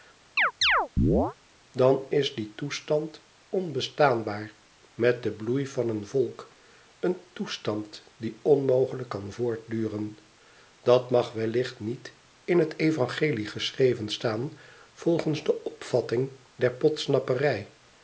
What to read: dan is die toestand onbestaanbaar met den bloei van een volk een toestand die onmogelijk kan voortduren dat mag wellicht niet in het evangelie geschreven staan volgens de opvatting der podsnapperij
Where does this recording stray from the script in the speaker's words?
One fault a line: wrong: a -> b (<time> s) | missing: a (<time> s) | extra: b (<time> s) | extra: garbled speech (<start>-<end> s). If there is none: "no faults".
no faults